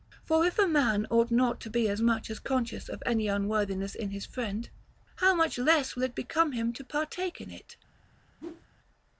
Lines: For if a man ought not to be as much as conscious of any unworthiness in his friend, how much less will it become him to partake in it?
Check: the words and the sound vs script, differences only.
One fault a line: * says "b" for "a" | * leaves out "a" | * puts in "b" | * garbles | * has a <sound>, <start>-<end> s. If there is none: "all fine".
* has a whoosh, 8.4-8.7 s